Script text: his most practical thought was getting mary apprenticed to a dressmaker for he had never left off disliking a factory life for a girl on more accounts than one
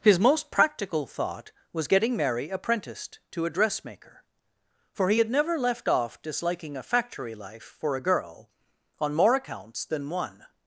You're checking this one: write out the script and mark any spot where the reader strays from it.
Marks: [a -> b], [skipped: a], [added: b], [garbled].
his most practical thought was getting mary apprenticed to a dressmaker for he had never left off disliking a factory life for a girl on more accounts than one